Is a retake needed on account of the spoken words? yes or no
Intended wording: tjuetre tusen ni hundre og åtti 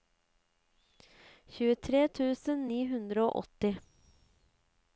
no